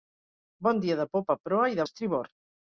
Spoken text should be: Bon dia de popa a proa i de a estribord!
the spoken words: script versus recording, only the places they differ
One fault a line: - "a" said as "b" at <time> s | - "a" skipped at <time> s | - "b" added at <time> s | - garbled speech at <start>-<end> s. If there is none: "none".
none